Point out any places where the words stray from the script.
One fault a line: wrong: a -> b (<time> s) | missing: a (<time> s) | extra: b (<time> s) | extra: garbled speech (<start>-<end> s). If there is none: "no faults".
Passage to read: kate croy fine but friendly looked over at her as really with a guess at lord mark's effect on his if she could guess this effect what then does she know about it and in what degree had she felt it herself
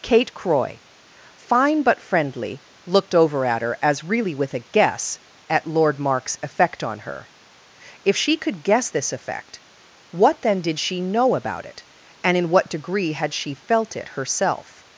wrong: his -> her (7.0 s)
wrong: does -> did (10.6 s)